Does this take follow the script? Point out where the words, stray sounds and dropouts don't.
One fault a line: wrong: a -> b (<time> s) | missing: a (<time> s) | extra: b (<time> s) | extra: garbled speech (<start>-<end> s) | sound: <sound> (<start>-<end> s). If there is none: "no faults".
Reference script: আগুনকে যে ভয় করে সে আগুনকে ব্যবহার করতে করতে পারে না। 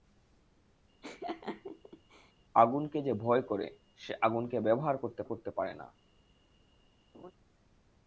sound: laugh (1.0-2.3 s)
sound: laugh (7.1-7.3 s)